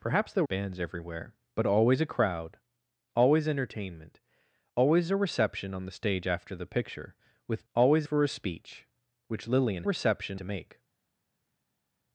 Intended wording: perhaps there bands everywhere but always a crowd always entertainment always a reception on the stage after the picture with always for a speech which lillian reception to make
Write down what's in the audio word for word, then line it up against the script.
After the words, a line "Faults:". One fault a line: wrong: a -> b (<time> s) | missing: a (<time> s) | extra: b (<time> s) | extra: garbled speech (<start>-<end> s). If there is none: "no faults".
perhaps there bands everywhere but always a crowd always entertainment always a reception on the stage after the picture with always for a speech which lillian reception to make
Faults:
no faults